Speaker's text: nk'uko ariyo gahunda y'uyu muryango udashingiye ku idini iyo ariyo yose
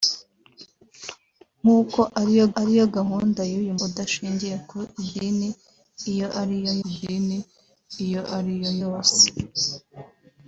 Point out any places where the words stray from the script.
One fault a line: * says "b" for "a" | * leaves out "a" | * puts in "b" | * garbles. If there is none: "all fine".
* puts in "ariyo"
* leaves out "muryango"
* puts in "idini iyo ariyo"